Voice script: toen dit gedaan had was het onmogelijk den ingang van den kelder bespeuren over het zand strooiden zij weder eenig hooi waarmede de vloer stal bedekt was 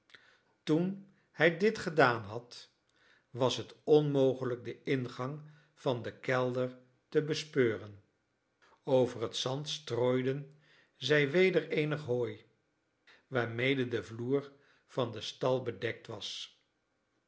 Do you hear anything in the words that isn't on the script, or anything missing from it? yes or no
yes